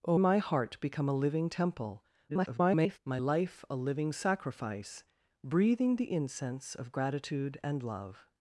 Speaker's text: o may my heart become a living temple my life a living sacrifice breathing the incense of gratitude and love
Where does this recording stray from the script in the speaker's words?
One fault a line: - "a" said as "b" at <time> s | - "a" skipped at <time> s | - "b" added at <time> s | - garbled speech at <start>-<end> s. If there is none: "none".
- "may" skipped at 0.2 s
- garbled speech at 2.3-3.0 s